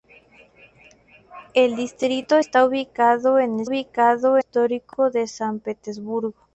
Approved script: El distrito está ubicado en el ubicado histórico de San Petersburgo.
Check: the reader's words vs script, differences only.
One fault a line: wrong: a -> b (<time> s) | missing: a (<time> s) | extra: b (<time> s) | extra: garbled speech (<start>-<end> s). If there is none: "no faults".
no faults